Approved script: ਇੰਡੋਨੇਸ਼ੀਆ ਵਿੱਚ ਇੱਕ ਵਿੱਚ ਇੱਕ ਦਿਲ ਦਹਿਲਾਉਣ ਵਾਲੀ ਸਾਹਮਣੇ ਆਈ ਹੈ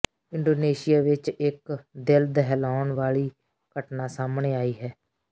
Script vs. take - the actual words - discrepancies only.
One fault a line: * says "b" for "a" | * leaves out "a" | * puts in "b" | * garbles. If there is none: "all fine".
* leaves out "ਵਿੱਚ ਇੱਕ"
* puts in "ਘਟਨਾ"